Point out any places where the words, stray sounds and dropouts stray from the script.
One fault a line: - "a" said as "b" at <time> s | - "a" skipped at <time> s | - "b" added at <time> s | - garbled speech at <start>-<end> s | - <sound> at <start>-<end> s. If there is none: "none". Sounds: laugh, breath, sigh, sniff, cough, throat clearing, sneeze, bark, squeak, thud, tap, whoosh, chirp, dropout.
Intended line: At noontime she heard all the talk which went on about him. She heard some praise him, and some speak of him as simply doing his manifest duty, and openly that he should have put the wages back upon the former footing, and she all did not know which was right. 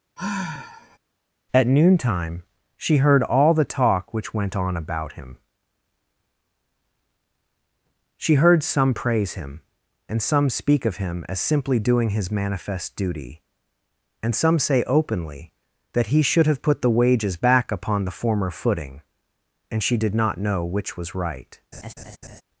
- sigh at 0.2-1.0 s
- "some say" added at 14.3 s
- "all" skipped at 20.0 s
- laugh at 21.7-22.4 s